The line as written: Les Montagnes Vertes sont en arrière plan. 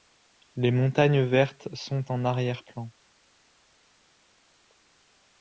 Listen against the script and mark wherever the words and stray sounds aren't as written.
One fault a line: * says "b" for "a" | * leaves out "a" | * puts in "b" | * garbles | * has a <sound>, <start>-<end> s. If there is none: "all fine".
all fine